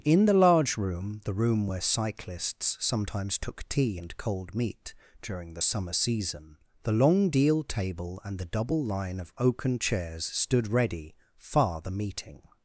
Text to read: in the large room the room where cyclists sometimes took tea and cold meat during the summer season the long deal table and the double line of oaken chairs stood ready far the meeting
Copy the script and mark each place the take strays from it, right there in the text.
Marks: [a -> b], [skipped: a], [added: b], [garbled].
in the large room the room where cyclists sometimes took tea and cold meat during the summer season the long deal table and the double line of oaken chairs stood ready far the meeting